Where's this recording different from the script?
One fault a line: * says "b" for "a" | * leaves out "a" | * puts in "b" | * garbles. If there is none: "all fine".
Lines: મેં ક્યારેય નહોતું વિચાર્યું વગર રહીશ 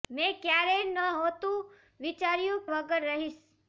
all fine